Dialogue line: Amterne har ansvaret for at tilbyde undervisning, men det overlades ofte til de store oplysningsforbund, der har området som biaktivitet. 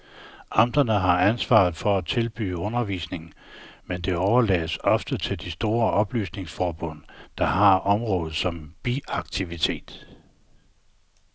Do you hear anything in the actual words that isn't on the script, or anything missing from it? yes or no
no